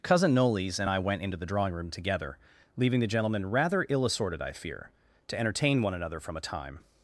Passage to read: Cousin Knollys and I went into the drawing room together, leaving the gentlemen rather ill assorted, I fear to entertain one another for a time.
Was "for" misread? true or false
true